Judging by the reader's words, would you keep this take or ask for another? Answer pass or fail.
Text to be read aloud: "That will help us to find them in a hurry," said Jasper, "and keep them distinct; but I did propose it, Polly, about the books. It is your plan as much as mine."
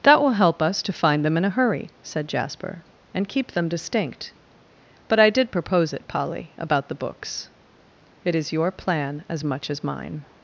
pass